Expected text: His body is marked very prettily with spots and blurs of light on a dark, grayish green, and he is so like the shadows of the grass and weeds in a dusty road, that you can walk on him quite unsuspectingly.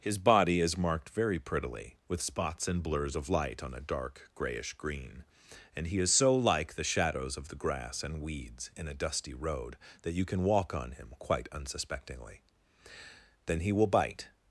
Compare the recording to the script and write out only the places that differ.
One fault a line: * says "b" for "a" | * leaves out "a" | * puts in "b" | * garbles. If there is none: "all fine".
* puts in "Then he will bite"